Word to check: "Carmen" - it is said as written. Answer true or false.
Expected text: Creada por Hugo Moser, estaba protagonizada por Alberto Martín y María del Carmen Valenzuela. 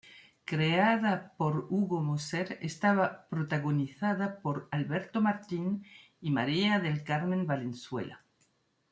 true